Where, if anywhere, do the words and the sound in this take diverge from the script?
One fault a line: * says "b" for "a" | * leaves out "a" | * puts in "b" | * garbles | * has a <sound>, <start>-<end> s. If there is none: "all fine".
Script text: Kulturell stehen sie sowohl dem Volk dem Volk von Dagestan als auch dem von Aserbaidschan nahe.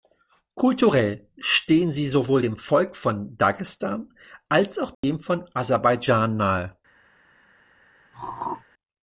* leaves out "dem Volk"
* has a dropout, 4.9-5.0 s
* has a throat clearing, 8.1-8.6 s